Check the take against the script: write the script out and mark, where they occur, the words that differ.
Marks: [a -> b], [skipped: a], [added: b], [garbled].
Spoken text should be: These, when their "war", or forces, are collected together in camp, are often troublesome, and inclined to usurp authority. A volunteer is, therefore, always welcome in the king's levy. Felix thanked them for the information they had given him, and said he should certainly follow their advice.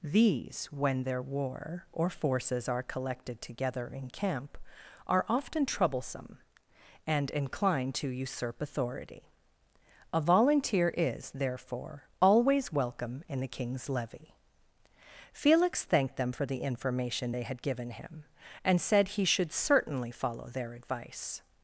These, when their "war", or forces, are collected together in camp, are often troublesome, and inclined to usurp authority. A volunteer is, therefore, always welcome in the king's levy. Felix thanked them for the information they had given him, and said he should certainly follow their advice.